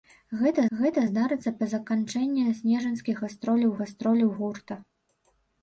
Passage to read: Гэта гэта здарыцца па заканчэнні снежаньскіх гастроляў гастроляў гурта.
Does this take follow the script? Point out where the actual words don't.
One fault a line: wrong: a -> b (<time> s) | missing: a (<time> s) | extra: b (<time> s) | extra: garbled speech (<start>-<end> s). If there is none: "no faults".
no faults